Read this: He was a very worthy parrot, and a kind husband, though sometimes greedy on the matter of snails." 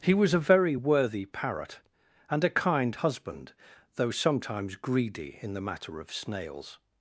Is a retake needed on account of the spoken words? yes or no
yes